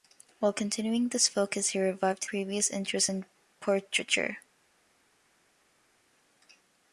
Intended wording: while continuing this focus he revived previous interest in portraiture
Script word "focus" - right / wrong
right